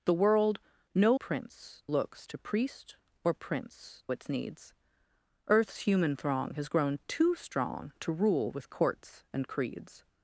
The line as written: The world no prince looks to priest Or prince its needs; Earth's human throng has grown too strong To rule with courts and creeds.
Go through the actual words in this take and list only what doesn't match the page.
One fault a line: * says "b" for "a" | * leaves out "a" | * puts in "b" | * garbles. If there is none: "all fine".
all fine